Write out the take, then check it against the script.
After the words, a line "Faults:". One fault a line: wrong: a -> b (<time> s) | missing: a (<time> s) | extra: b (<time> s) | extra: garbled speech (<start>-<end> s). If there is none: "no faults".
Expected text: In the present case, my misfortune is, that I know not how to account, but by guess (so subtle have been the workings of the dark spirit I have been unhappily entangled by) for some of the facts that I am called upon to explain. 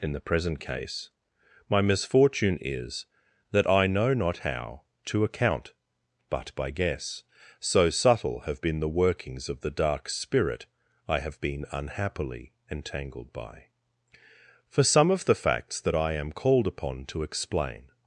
In the present case, my misfortune is, that I know not how to account, but by guess (so subtle have been the workings of the dark spirit I have been unhappily entangled by) for some of the facts that I am called upon to explain.
Faults:
no faults